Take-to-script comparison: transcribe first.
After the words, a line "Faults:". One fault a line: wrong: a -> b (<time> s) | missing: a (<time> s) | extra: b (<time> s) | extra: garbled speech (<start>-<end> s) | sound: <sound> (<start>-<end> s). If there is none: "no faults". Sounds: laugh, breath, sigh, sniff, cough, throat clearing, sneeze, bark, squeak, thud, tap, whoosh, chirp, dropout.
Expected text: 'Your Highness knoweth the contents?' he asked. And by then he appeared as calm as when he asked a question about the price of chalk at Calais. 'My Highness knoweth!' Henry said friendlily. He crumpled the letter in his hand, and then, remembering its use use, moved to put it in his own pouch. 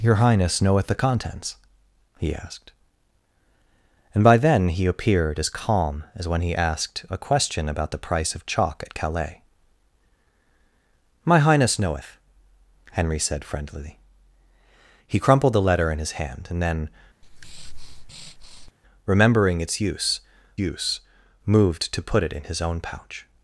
'Your Highness knoweth the contents?' he asked. And by then he appeared as calm as when he asked a question about the price of chalk at Calais. 'My Highness knoweth!' Henry said friendlily. He crumpled the letter in his hand, and then, remembering its use use, moved to put it in his own pouch.
Faults:
sound: breath (17.2-18.7 s)